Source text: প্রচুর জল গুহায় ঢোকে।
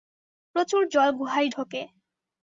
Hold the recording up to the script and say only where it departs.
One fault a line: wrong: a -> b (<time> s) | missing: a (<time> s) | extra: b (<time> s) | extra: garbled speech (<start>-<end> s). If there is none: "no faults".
no faults